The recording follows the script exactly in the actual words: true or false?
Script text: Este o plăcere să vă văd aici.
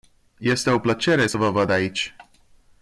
true